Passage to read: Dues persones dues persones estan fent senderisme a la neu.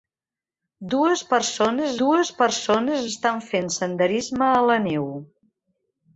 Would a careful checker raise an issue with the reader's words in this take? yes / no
no